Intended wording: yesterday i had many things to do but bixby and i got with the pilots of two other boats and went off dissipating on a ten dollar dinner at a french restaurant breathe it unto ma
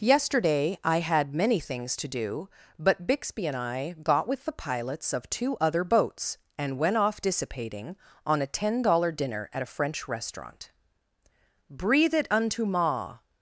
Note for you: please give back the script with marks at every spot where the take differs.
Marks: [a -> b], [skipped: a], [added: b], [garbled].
yesterday i had many things to do but bixby and i got with the pilots of two other boats and went off dissipating on a ten dollar dinner at a french restaurant breathe it unto ma